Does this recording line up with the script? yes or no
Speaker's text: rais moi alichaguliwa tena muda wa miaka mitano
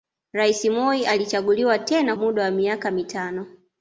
yes